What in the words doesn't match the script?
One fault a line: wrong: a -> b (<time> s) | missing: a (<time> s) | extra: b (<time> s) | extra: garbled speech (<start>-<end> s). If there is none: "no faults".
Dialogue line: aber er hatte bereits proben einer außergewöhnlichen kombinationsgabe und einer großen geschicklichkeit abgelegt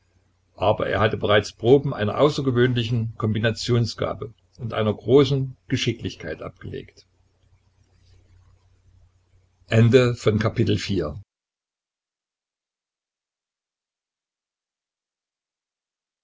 no faults